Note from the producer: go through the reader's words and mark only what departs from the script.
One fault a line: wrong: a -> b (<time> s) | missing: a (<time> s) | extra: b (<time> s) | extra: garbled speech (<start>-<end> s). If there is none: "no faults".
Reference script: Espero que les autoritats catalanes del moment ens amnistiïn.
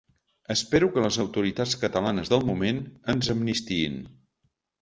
no faults